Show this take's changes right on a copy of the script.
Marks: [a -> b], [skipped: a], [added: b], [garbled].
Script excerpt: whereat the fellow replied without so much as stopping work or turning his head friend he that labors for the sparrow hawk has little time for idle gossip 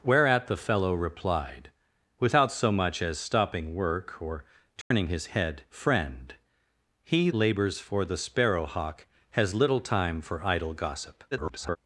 whereat the fellow replied without so much as stopping work or turning his head friend he [skipped: that] labors for the sparrow hawk has little time for idle gossip [garbled]